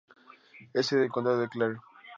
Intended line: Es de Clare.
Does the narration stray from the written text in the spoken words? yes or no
yes